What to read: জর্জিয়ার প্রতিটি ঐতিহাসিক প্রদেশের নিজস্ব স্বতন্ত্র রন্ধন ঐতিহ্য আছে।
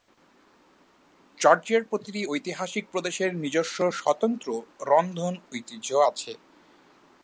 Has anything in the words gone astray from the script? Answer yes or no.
no